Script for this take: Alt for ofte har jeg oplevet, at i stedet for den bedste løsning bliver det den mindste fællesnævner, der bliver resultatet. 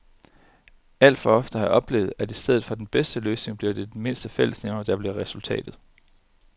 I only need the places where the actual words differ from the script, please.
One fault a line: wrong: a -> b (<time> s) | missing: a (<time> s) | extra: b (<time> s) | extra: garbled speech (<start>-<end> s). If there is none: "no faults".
no faults